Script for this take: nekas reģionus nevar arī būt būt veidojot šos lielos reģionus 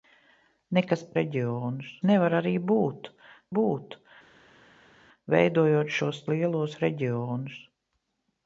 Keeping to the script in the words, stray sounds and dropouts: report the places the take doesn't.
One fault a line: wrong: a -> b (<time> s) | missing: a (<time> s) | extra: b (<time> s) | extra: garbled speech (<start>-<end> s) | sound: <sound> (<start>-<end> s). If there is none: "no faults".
no faults